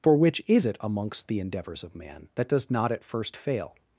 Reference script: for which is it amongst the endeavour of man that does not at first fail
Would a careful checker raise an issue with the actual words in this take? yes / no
yes